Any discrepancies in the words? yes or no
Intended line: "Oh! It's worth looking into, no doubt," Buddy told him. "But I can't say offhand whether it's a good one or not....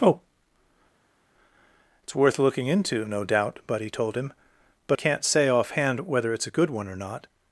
yes